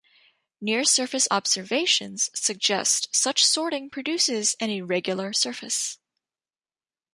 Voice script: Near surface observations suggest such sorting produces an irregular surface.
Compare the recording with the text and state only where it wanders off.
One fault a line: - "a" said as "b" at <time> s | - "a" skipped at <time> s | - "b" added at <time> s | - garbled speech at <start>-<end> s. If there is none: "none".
none